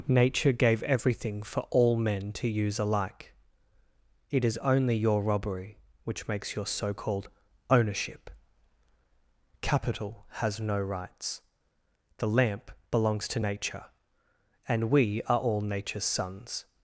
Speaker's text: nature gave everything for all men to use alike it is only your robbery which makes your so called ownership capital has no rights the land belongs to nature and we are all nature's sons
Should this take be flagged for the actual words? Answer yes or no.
yes